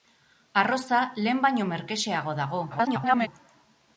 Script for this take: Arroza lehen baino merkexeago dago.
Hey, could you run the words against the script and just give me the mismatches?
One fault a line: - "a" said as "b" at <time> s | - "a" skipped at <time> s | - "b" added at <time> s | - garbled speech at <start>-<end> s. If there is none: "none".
- garbled speech at 2.7-3.3 s